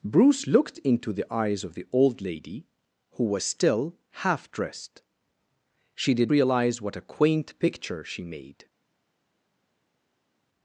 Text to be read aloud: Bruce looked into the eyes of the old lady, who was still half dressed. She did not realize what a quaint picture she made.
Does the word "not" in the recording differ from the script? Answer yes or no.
yes